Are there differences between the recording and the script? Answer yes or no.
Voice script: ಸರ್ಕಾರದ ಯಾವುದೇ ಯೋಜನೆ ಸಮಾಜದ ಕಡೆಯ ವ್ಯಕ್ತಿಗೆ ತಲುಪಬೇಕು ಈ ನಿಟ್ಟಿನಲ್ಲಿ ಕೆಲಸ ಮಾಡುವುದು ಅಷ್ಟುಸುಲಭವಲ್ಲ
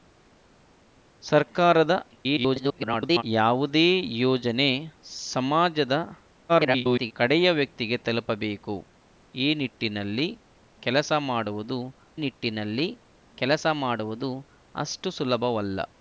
yes